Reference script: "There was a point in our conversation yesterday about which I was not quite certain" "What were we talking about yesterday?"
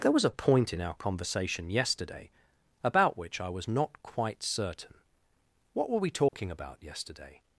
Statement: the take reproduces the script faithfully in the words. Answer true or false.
true